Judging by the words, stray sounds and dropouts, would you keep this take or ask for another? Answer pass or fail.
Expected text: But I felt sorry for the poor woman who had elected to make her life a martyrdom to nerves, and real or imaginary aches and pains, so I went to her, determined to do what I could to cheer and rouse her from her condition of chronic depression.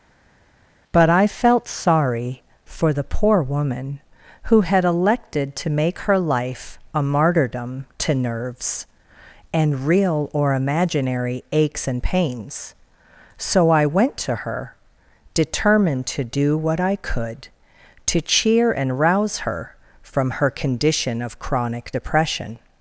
pass